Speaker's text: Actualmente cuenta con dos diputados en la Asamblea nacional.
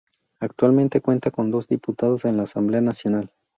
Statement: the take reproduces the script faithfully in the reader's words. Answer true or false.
true